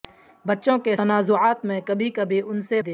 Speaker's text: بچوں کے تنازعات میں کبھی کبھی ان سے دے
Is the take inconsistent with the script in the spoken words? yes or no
no